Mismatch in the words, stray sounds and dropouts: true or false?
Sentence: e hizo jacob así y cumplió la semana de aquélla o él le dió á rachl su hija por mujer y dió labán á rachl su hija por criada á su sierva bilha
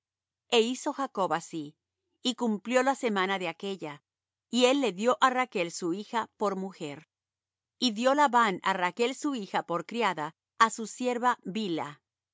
true